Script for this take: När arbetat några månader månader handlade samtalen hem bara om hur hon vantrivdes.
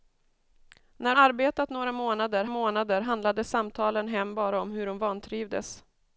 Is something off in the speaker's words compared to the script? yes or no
no